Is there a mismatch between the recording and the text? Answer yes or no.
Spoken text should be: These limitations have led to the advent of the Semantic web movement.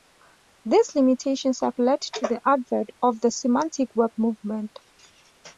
no